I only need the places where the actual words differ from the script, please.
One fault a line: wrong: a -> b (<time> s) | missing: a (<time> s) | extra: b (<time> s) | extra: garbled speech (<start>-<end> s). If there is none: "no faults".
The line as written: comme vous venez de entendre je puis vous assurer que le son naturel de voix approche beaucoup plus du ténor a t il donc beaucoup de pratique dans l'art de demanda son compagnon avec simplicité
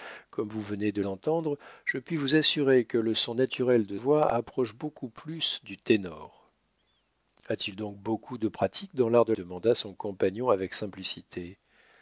no faults